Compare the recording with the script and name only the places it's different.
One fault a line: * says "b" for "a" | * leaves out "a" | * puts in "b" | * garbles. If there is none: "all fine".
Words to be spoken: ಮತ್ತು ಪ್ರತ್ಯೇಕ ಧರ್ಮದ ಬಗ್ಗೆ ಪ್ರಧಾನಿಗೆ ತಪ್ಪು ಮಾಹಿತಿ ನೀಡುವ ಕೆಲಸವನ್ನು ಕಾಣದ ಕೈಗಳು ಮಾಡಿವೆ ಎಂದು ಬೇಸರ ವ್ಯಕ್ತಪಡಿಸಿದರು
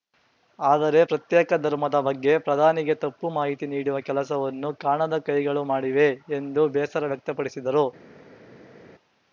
* says "ಆದರೆ" for "ಮತ್ತು"